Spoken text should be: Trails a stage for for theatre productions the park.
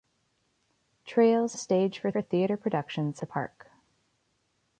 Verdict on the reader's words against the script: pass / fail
pass